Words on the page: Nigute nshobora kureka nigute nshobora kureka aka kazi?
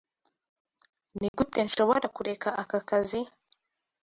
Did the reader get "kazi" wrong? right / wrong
right